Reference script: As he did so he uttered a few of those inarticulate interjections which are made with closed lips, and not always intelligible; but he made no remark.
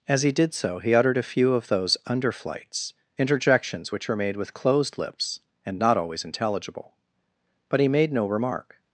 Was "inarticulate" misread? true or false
true